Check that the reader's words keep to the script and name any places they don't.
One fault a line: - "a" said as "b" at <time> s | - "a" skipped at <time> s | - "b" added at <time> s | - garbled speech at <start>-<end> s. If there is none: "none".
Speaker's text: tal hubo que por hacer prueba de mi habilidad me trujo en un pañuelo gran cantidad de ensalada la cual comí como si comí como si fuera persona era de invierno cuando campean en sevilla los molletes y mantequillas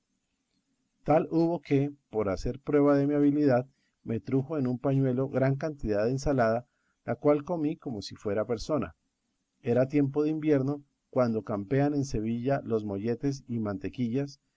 - "comí como si" skipped at 8.2 s
- "tiempo" added at 9.9 s